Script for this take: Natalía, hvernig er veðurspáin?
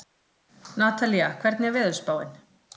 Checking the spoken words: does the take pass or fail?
pass